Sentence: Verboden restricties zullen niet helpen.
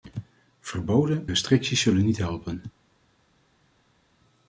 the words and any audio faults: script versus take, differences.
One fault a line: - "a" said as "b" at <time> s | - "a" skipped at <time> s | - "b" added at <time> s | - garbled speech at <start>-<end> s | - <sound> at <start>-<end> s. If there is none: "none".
none